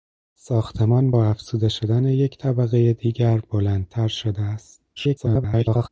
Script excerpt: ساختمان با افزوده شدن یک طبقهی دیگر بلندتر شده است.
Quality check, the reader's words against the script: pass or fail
fail